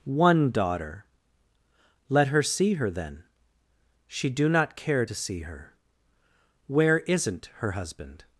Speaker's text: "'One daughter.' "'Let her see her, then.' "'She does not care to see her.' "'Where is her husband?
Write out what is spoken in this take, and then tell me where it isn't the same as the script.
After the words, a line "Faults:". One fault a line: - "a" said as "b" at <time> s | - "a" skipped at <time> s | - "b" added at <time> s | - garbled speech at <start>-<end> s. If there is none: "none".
"'One daughter.' "'Let her see her, then.' "'She do not care to see her.' "'Where isn't her husband?
Faults:
- "does" said as "do" at 4.3 s
- "is" said as "isn't" at 7.0 s